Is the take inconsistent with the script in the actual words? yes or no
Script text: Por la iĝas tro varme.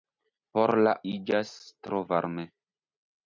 no